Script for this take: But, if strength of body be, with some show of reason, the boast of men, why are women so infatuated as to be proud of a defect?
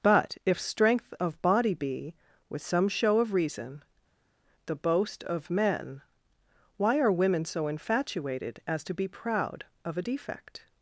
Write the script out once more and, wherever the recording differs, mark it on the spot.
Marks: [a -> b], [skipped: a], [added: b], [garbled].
But, if strength of body be, with some show of reason, the boast of men, why are women so infatuated as to be proud of a defect?